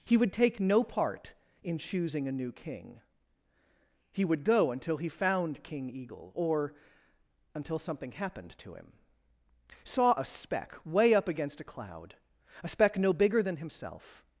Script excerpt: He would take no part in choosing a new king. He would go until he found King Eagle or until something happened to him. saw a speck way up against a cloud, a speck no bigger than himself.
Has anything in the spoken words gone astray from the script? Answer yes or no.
no